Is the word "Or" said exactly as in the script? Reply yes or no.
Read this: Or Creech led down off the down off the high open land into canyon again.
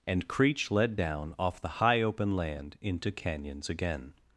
no